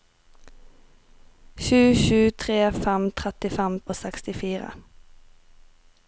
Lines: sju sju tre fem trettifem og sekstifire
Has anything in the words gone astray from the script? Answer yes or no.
no